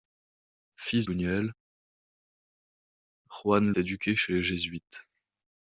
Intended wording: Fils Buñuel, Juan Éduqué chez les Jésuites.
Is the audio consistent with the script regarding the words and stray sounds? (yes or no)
yes